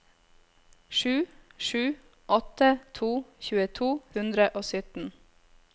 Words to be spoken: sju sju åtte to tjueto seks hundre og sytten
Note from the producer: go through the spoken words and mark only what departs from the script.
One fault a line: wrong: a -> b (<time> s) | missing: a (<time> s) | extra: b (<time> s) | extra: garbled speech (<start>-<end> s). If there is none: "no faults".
missing: seks (3.9 s)